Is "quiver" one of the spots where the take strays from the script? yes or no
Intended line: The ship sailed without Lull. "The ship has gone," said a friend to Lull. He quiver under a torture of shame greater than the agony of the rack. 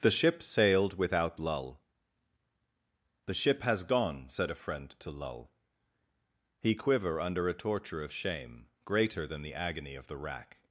no